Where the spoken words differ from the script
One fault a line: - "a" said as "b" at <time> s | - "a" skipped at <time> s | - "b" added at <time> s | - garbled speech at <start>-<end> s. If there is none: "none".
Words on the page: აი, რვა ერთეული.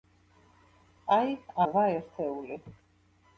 none